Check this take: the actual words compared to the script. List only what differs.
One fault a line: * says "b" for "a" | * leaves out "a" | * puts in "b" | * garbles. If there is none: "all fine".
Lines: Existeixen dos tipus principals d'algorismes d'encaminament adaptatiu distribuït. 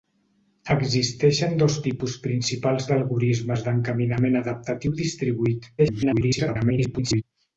* garbles